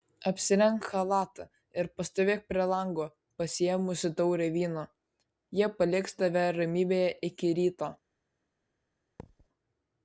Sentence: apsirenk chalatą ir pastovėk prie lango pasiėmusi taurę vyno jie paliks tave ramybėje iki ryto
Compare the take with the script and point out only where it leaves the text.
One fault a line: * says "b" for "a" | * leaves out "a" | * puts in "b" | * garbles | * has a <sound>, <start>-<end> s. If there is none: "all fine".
* has a thud, 9.2-9.5 s